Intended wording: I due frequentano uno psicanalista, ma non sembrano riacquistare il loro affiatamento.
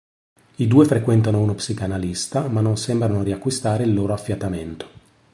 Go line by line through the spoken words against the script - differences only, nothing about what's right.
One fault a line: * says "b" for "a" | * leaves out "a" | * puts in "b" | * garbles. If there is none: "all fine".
all fine